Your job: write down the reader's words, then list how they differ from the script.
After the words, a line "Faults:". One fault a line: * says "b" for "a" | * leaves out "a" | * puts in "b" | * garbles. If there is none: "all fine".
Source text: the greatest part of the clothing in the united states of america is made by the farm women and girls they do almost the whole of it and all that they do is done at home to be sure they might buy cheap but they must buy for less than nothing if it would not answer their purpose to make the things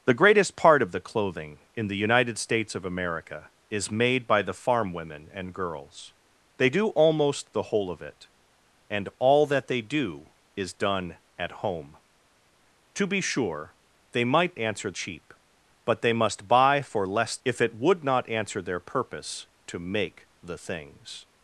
the greatest part of the clothing in the united states of america is made by the farm women and girls they do almost the whole of it and all that they do is done at home to be sure they might answer cheap but they must buy for less if it would not answer their purpose to make the things
Faults:
* says "answer" for "buy"
* leaves out "than nothing"